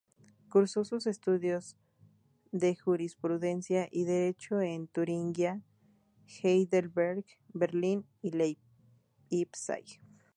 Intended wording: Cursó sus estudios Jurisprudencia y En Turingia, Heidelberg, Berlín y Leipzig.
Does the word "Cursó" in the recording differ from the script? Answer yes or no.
no